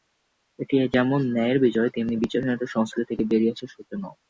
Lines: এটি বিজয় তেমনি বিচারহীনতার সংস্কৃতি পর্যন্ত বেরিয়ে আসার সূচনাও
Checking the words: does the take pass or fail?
fail